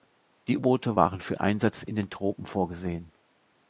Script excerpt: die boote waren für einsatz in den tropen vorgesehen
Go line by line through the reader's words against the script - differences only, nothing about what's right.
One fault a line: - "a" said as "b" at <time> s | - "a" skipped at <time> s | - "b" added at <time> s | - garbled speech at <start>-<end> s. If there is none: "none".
none